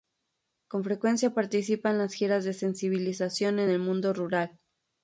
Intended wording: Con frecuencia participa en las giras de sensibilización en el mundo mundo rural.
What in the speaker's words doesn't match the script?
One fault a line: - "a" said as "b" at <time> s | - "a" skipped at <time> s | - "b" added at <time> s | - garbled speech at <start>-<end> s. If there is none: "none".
- "mundo" skipped at 4.1 s